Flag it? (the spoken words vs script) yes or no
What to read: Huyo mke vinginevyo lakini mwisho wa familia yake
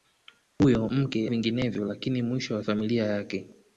no